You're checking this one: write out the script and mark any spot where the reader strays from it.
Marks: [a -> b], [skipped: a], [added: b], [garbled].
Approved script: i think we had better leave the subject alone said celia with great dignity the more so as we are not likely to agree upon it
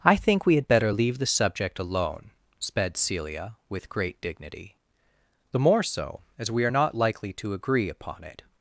i think we had better leave the subject alone [said -> sped] celia with great dignity the more so as we are not likely to agree upon it